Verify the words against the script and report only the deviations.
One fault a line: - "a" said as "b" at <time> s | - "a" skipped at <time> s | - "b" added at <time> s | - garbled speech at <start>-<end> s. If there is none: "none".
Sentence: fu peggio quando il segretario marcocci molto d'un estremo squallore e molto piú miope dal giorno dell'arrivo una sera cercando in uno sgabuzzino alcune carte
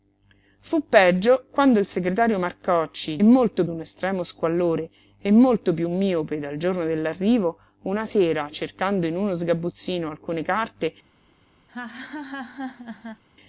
none